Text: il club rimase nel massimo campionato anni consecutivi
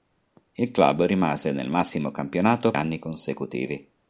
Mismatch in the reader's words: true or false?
false